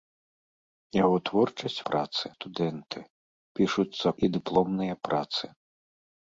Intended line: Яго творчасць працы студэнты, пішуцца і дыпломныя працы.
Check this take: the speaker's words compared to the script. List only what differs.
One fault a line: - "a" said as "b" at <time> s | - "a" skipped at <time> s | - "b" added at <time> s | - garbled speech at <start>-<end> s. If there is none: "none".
none